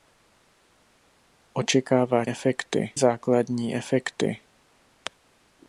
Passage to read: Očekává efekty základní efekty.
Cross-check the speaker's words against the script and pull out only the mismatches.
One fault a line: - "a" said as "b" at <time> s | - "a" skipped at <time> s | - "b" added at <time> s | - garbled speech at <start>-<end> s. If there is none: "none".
none